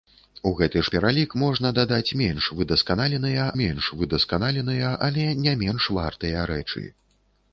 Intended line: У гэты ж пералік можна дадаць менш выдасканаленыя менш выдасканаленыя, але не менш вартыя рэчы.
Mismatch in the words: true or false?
false